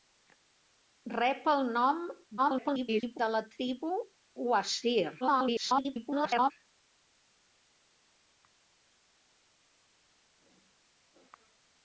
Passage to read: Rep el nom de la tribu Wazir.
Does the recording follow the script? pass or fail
fail